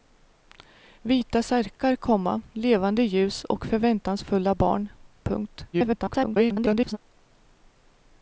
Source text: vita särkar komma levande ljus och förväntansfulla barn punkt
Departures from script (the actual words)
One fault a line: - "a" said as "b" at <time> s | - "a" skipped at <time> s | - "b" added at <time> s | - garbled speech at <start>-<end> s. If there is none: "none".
- garbled speech at 5.7-7.0 s